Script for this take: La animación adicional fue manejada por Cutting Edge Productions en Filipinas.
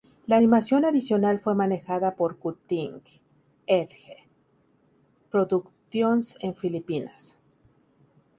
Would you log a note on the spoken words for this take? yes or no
no